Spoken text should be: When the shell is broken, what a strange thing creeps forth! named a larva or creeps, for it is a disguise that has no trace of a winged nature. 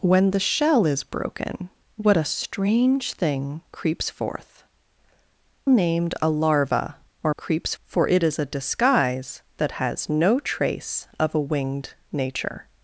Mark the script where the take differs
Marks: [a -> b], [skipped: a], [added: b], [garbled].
When the shell is broken, what a strange thing creeps forth! named a larva or creeps, for it is a disguise that has no trace of a winged nature.